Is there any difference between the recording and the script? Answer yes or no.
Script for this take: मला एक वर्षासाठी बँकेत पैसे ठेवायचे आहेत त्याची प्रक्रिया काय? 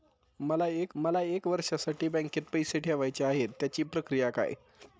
yes